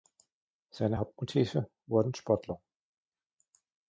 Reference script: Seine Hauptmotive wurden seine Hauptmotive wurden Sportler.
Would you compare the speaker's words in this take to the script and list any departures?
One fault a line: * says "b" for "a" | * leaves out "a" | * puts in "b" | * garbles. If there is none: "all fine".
* leaves out "seine Hauptmotive wurden"